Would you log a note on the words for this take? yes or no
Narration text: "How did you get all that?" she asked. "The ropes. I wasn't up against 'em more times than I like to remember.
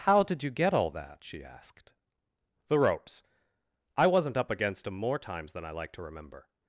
no